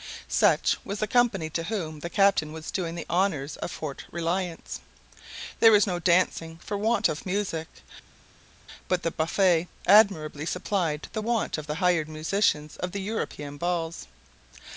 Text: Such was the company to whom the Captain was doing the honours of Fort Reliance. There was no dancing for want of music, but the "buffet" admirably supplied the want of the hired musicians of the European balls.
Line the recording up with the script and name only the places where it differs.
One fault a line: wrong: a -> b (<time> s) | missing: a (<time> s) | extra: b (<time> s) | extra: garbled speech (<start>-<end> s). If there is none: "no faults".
no faults